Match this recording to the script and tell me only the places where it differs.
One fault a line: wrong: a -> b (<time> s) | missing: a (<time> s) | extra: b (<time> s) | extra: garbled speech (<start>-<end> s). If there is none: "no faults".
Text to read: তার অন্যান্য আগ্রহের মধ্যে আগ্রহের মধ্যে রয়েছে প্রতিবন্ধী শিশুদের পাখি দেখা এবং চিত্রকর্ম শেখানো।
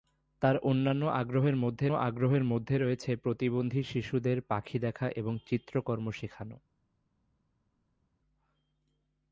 no faults